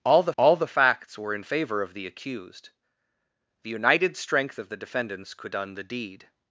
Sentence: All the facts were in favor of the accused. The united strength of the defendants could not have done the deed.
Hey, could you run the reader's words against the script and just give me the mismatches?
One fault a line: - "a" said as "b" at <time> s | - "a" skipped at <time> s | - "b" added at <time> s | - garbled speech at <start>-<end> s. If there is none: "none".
- "all the" added at 0.4 s
- "not have" skipped at 5.5 s